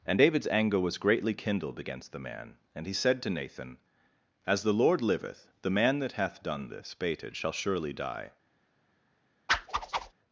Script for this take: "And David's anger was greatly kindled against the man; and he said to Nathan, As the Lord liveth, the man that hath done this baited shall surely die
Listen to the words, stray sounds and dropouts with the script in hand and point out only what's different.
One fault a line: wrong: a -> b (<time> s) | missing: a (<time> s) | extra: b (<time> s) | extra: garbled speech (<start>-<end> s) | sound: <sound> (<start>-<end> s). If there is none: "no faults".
sound: whoosh (9.5-10.1 s)